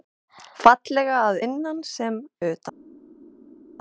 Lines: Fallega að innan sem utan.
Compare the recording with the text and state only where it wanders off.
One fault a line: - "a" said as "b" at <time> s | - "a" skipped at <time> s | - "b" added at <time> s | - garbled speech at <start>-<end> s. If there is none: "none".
none